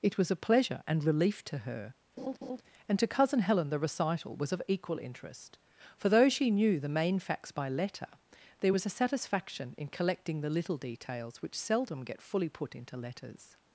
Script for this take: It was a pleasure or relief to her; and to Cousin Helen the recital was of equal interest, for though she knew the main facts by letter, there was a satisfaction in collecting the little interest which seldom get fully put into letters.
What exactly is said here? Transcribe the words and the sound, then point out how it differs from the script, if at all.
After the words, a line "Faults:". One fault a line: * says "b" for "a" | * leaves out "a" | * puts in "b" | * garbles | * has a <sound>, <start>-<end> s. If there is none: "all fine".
It was a pleasure and relief to her; and to Cousin Helen the recital was of equal interest, for though she knew the main facts by letter, there was a satisfaction in collecting the little details which seldom get fully put into letters.
Faults:
* says "and" for "or"
* has a laugh, 2.2-2.6 s
* says "details" for "interest"